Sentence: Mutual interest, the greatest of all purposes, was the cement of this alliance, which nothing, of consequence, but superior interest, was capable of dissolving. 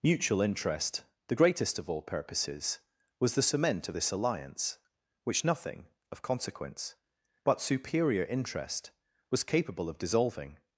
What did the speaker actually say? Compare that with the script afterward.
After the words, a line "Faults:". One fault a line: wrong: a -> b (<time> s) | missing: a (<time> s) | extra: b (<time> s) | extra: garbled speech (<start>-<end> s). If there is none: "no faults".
Mutual interest, the greatest of all purposes, was the cement of this alliance, which nothing, of consequence, but superior interest, was capable of dissolving.
Faults:
no faults